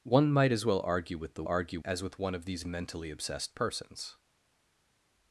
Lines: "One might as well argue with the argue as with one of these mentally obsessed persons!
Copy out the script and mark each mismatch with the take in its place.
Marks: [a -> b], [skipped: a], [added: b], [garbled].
"One might as well argue with the argue as with one of these mentally obsessed persons!